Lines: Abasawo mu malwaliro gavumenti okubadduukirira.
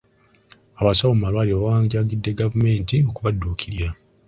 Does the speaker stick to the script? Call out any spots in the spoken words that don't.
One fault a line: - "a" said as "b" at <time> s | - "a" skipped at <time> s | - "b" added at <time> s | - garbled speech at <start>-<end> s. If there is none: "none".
- "bawanjagidde" added at 1.6 s